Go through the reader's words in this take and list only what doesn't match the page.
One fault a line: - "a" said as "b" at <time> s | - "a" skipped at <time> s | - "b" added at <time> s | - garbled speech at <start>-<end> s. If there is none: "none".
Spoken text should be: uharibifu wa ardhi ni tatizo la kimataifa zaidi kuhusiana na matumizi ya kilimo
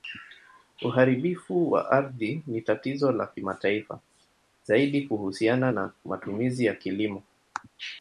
none